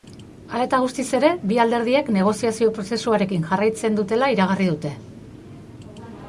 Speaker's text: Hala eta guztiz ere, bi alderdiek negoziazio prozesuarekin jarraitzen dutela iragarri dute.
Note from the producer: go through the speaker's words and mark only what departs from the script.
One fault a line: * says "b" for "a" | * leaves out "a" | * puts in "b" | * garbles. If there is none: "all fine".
all fine